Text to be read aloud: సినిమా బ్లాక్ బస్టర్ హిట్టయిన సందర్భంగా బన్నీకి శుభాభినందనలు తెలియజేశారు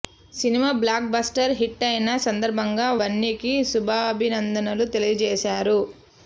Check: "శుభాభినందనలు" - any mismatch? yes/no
no